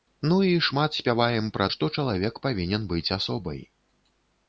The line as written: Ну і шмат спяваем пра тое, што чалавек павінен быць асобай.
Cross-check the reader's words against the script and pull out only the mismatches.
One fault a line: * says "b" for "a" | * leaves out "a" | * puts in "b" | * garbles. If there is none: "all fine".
* leaves out "тое"